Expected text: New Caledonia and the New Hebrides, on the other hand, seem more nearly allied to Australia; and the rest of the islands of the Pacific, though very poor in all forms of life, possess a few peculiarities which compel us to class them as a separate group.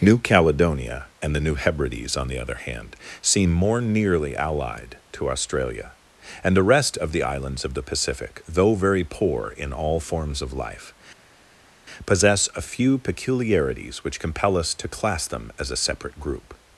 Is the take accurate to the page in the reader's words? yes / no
yes